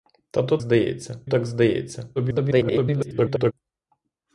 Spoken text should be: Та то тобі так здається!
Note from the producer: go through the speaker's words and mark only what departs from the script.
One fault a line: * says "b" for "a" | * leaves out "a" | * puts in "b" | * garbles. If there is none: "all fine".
* says "здається" for "тобі"
* garbles